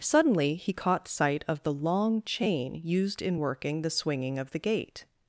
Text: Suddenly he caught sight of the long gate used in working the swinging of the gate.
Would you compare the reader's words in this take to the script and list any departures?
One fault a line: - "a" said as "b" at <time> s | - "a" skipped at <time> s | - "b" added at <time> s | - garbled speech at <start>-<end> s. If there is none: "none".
- "gate" said as "chain" at 2.2 s